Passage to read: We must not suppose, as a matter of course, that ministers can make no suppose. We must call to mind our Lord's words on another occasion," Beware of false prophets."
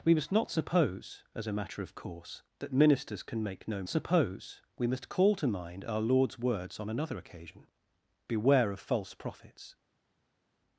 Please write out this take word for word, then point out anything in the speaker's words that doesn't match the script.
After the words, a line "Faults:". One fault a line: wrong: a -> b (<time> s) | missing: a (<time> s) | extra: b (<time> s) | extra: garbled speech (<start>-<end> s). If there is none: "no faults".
We must not suppose, as a matter of course, that ministers can make no suppose. We must call to mind our Lord's words on another occasion," Beware of false prophets."
Faults:
no faults